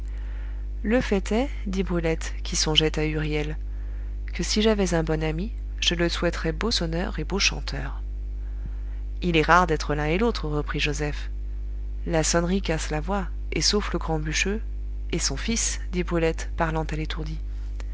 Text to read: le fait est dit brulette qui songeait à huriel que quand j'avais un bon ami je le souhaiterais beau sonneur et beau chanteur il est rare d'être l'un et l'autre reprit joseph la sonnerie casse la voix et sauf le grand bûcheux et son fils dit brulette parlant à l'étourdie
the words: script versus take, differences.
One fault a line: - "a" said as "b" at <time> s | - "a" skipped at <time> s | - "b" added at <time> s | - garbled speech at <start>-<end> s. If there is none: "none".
- "quand" said as "si" at 4.4 s